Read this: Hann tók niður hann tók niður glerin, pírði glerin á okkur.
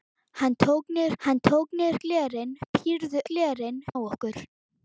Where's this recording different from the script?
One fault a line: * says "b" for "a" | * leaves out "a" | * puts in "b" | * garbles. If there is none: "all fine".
all fine